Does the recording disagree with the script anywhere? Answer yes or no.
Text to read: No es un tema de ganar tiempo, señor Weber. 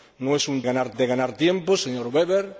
yes